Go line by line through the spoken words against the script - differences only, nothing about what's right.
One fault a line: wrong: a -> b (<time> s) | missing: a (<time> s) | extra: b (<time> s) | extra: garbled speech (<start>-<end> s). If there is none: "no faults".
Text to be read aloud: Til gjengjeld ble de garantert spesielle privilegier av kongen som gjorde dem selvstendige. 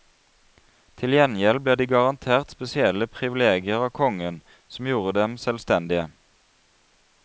no faults